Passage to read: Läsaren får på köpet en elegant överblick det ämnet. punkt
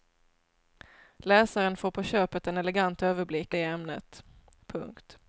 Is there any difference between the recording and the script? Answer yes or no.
no